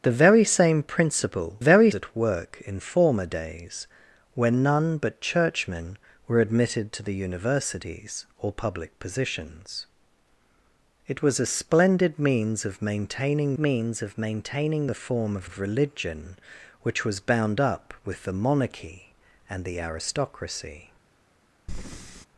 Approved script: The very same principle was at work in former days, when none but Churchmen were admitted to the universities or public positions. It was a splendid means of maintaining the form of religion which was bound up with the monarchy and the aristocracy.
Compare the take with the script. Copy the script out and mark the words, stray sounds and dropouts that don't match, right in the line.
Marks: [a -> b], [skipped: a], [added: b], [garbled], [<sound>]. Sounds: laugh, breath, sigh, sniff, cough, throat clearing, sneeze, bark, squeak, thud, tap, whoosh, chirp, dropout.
The very same principle [was -> very] at work in former days, when none but Churchmen were admitted to the universities or public positions. It was a splendid means of maintaining [added: means of maintaining] the form of [added: of] religion which was bound up with the monarchy and the aristocracy. [breath]